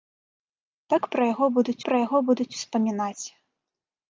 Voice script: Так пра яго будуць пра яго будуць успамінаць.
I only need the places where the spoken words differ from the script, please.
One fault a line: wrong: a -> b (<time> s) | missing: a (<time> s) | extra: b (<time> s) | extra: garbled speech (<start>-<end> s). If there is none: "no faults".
no faults